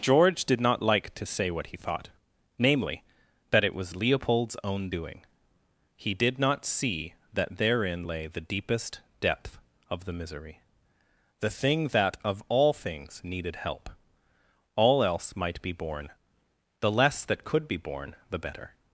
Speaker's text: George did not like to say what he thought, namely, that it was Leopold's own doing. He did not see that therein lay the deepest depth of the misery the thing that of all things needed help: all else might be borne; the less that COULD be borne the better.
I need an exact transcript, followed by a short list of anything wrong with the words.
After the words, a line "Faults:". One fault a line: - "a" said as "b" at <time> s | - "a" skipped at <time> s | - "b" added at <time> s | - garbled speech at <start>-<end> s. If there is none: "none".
George did not like to say what he thought, namely, that it was Leopold's own doing. He did not see that therein lay the deepest depth of the misery the thing that of all things needed help: all else might be borne; the less that COULD be borne the better.
Faults:
none